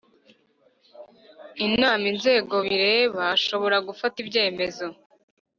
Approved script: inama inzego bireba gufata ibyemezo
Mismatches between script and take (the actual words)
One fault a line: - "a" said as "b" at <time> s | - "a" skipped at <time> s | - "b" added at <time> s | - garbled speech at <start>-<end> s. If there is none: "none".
- "ashobora" added at 3.4 s